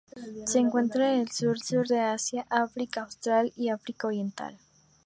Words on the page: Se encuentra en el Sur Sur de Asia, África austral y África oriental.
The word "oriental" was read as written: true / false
true